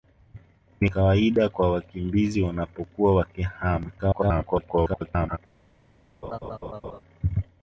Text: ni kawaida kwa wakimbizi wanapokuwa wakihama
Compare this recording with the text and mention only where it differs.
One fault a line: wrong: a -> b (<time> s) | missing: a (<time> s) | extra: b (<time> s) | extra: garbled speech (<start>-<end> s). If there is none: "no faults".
extra: garbled speech (4.0-5.4 s)